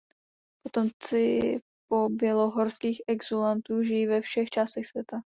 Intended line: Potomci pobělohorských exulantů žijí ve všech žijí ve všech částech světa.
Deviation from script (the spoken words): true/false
true